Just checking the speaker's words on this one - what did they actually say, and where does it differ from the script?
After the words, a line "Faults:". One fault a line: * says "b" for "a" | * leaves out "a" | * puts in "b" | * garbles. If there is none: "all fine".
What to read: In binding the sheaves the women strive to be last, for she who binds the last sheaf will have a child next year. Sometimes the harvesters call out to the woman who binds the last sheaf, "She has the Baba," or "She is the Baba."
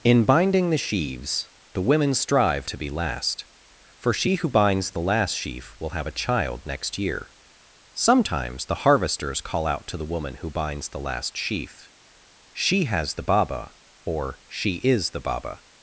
In binding the sheaves the women strive to be last, for she who binds the last sheaf will have a child next year. Sometimes the harvesters call out to the woman who binds the last sheaf, "She has the Baba," or "She is the Baba."
Faults:
all fine